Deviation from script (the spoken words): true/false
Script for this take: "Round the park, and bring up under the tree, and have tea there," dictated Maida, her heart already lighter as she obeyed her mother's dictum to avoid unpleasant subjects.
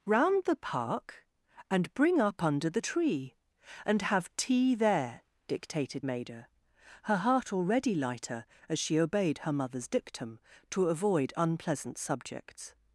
false